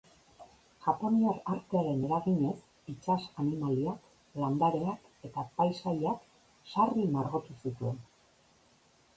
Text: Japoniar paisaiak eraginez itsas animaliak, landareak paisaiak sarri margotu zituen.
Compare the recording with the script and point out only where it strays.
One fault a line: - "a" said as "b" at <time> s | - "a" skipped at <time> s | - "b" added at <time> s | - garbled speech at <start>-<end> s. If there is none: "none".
- "paisaiak" said as "artearen" at 1.6 s
- "eta" added at 5.3 s